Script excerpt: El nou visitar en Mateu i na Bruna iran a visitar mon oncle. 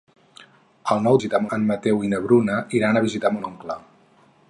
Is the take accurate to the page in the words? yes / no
yes